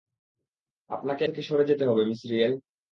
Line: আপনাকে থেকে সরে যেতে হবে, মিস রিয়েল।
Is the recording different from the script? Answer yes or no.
no